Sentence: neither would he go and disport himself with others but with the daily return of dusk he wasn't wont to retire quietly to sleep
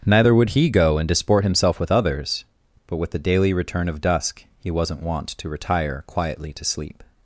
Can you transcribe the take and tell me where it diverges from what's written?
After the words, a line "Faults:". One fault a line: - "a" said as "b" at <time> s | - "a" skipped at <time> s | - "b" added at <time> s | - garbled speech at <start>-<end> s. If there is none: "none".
neither would he go and disport himself with others but with the daily return of dusk he wasn't wont to retire quietly to sleep
Faults:
none